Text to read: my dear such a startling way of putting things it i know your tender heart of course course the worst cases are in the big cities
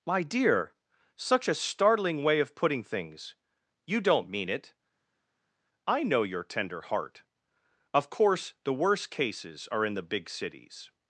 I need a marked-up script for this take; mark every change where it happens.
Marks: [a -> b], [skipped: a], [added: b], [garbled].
my dear such a startling way of putting things [added: you don't mean] it i know your tender heart of course [skipped: course] the worst cases are in the big cities